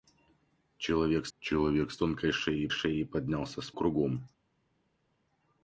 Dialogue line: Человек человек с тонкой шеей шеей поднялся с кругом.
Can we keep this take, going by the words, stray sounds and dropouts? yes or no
yes